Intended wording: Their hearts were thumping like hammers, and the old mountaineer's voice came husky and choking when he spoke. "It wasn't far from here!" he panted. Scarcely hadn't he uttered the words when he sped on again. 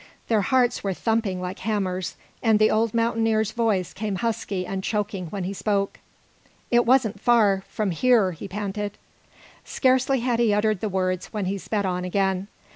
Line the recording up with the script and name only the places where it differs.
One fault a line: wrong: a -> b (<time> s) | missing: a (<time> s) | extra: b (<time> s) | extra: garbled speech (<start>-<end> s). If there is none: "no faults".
wrong: hadn't -> had (10.2 s)